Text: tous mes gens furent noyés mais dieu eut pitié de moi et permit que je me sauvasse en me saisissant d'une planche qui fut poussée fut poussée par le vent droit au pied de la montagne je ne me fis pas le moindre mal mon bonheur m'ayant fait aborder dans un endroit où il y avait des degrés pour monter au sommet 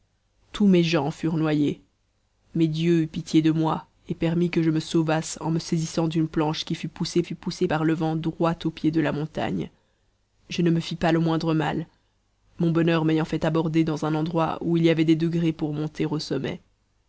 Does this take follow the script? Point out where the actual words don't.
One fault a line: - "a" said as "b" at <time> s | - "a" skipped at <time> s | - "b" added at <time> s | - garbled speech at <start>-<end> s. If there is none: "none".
none